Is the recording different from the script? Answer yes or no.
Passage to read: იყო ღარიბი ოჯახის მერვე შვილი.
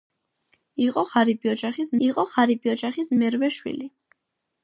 yes